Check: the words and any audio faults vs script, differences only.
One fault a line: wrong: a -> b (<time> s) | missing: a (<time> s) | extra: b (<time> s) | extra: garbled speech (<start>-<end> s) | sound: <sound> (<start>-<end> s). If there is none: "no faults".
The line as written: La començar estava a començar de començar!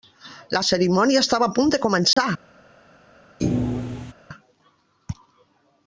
wrong: començar -> cerimònia (0.7 s)
wrong: començar -> punt (1.6 s)
sound: dropout (2.1-2.2 s)
sound: thud (3.4-4.1 s)